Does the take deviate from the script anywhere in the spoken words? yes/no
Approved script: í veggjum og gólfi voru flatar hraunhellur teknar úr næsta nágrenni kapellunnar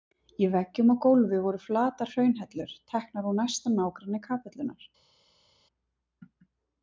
no